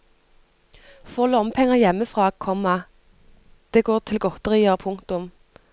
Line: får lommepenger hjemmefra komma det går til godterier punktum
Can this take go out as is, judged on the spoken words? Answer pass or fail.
pass